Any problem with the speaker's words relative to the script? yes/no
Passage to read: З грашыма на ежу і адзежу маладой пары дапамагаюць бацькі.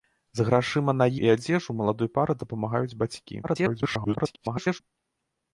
yes